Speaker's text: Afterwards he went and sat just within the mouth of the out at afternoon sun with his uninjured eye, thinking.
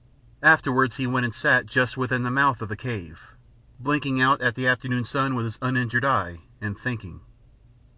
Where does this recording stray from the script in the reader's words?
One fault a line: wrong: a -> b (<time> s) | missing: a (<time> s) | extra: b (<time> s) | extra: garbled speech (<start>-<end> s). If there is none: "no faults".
extra: cave blinking (2.8 s)
extra: the (4.5 s)
extra: and (6.6 s)